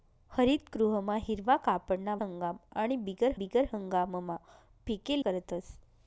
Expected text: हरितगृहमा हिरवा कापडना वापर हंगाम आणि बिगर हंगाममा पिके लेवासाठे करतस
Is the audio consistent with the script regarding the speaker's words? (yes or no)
no